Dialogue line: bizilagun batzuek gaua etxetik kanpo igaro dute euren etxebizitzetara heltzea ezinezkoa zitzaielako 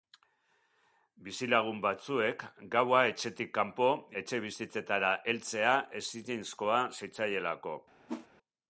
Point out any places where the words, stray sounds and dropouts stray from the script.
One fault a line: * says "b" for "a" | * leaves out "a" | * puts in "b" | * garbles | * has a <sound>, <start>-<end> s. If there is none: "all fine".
* leaves out "igaro dute euren"
* has a whoosh, 8.1-8.3 s